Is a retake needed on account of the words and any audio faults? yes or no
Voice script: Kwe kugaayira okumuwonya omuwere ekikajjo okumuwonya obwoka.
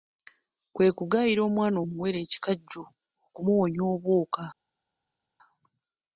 yes